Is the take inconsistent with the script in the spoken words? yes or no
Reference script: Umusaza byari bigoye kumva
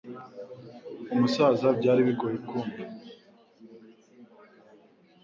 no